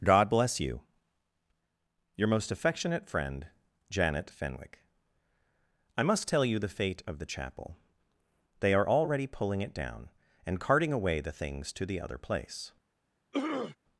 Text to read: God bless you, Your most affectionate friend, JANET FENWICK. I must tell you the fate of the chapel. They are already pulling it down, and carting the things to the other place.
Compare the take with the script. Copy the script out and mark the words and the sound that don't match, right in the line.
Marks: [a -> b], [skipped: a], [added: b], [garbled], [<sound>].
God bless you, Your most affectionate friend, JANET FENWICK. I must tell you the fate of the chapel. They are already pulling it down, and carting [added: away] the things to the other place. [throat clearing]